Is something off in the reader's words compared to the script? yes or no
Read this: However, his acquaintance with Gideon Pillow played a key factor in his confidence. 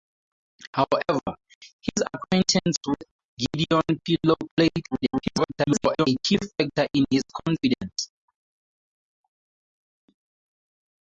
yes